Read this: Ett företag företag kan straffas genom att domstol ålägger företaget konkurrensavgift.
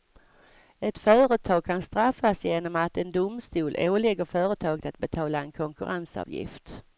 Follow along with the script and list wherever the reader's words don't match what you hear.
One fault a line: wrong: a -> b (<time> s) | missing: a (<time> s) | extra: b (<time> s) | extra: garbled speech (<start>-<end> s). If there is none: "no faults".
missing: företag (1.6 s)
extra: en (3.0 s)
extra: att betala en (4.8 s)